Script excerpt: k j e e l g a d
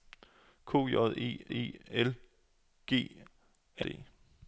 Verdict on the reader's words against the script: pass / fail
pass